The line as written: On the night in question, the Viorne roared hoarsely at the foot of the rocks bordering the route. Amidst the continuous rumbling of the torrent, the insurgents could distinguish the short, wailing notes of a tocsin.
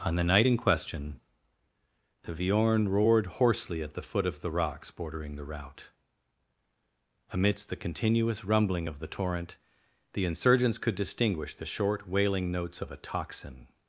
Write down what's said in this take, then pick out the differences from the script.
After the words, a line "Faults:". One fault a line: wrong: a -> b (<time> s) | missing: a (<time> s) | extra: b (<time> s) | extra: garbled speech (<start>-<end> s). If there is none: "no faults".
On the night in question, the Viorne roared hoarsely at the foot of the rocks bordering the route. Amidst the continuous rumbling of the torrent, the insurgents could distinguish the short, wailing notes of a tocsin.
Faults:
no faults